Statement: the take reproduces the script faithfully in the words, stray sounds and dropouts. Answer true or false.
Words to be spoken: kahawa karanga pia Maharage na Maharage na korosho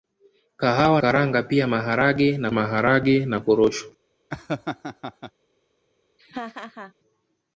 false